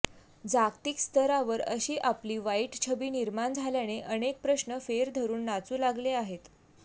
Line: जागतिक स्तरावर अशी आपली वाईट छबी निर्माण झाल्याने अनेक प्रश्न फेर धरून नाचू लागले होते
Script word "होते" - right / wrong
wrong